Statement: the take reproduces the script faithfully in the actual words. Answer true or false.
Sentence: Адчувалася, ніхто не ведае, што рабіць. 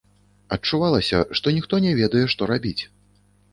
false